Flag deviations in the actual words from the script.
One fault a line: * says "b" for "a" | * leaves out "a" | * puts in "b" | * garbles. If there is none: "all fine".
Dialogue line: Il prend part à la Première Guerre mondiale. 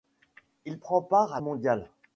* leaves out "la Première Guerre"